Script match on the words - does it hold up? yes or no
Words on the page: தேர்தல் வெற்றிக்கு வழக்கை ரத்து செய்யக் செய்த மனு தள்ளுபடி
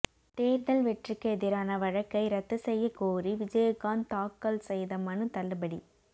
no